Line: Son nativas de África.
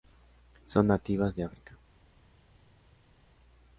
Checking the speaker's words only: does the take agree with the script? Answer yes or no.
yes